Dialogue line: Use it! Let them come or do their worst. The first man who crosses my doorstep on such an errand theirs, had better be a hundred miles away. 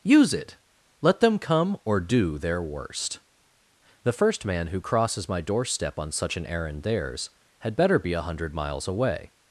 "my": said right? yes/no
yes